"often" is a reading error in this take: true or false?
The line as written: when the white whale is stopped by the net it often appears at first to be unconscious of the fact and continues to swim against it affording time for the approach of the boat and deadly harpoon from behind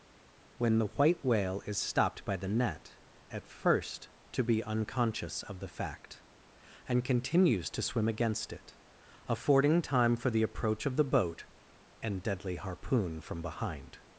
true